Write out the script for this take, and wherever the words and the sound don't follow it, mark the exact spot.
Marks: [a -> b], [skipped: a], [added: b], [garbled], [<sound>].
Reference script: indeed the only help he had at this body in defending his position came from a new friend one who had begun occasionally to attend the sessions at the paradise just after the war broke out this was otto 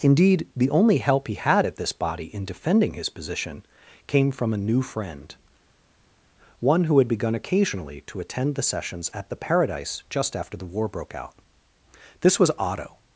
indeed the only help he had at this body in defending his position came from a new friend one who had begun occasionally to attend the sessions at the paradise just after the war broke out this was otto